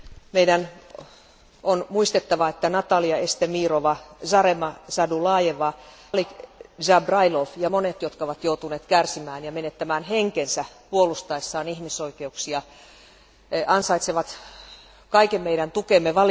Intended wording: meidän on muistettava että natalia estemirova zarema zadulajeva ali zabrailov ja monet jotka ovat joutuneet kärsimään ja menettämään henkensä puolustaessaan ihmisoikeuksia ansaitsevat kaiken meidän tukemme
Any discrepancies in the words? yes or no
no